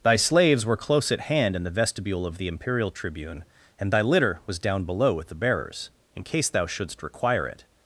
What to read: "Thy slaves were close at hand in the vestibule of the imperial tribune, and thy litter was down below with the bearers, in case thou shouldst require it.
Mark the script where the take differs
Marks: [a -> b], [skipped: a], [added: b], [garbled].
"Thy slaves were close at hand in the vestibule of the imperial tribune, and thy litter was down below with the bearers, in case thou shouldst require it.